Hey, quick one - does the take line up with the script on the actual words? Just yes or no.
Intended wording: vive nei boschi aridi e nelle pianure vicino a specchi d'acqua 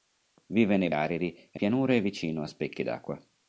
no